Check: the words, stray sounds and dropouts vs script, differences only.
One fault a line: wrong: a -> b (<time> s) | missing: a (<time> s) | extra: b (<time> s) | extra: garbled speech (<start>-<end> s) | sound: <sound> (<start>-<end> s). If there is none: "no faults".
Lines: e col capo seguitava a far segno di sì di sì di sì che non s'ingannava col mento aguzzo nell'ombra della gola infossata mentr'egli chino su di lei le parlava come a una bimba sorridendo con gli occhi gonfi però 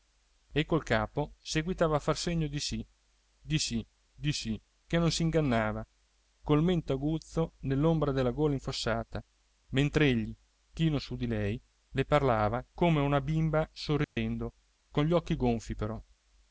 sound: dropout (14.0-14.2 s)